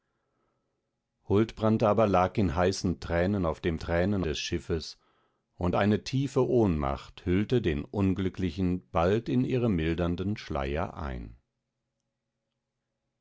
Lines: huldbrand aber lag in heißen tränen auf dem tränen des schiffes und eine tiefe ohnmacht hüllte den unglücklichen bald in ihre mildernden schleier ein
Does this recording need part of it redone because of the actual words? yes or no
no